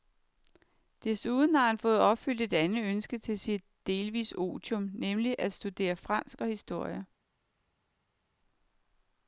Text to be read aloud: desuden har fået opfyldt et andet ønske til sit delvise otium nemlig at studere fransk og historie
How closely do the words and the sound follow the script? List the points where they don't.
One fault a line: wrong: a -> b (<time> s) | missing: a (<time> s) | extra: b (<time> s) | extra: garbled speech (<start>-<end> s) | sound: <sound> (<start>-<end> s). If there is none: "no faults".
extra: han (1.7 s)